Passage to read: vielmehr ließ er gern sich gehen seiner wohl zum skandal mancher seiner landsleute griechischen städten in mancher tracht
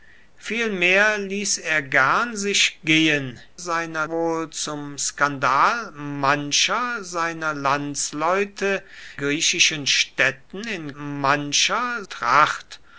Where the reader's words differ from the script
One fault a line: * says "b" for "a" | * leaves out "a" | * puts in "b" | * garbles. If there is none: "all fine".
all fine